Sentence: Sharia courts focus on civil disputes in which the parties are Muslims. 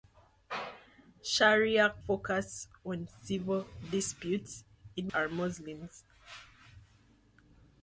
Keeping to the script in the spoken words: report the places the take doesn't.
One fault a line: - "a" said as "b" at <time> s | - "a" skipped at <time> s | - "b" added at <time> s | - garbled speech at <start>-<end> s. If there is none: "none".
- "courts" skipped at 1.9 s
- "which the parties" skipped at 5.1 s